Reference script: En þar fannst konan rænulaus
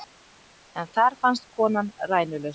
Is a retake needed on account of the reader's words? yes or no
no